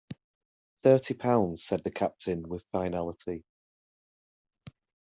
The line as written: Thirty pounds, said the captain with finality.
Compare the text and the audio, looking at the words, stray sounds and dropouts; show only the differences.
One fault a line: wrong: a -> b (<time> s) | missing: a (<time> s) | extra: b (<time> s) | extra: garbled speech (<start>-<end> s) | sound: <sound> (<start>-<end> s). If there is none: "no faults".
no faults